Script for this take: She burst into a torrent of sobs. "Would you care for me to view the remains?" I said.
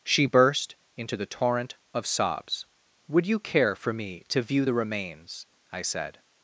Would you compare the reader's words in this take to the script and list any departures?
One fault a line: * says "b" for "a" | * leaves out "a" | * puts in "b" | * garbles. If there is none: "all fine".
* says "the" for "a"